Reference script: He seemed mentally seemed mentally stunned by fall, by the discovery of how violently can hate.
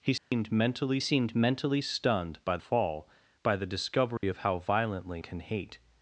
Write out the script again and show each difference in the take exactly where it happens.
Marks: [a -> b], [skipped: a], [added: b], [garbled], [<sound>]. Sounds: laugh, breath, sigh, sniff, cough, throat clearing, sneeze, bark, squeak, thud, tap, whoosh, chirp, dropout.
He seemed [dropout] mentally seemed mentally stunned by fall, by the discovery [dropout] of how violently can hate.